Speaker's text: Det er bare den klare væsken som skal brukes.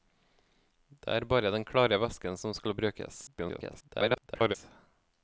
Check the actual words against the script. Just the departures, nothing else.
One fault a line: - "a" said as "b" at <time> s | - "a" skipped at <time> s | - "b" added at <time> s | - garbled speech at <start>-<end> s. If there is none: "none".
- garbled speech at 3.3-4.6 s